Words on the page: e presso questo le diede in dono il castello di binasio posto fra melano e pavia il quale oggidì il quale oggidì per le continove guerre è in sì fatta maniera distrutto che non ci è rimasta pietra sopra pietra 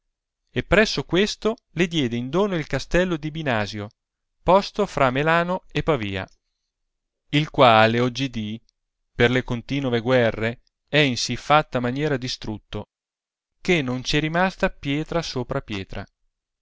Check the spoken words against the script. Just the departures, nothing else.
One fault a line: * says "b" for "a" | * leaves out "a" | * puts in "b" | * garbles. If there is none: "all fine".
* leaves out "il quale oggidì"